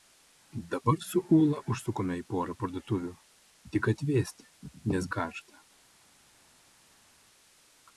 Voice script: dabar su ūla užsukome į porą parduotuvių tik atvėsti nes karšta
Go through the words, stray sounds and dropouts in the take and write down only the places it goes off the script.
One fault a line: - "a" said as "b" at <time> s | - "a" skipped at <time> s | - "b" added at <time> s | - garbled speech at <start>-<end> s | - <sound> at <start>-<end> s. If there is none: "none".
none